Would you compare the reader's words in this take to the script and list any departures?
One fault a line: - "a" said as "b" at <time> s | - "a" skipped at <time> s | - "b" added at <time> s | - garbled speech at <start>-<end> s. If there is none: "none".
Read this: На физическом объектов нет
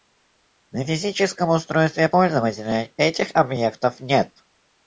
- "устройстве пользователя этих" added at 1.5 s